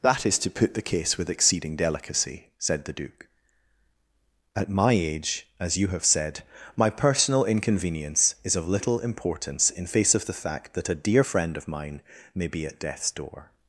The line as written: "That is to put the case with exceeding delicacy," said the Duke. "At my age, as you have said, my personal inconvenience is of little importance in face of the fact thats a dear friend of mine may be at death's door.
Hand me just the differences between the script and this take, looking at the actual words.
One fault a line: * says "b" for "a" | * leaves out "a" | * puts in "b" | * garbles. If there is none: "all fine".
* says "that" for "thats"